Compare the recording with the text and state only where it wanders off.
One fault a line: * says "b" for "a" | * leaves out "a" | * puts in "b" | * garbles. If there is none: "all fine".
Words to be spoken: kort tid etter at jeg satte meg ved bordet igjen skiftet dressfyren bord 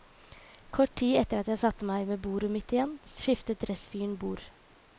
* puts in "mitt"